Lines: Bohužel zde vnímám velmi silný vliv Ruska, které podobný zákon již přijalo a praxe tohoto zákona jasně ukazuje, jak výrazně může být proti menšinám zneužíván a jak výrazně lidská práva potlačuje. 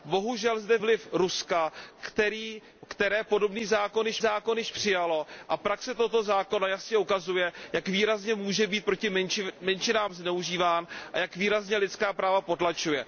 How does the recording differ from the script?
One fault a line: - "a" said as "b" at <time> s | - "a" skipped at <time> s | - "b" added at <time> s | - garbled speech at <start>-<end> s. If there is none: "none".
- "vnímám velmi silný" skipped at 0.8 s
- "zákon již" added at 4.2 s